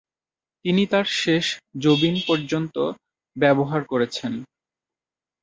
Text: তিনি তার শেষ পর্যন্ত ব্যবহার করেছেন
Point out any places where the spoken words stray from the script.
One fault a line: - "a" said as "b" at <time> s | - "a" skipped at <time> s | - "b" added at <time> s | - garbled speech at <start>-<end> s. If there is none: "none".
- "জবিন" added at 1.8 s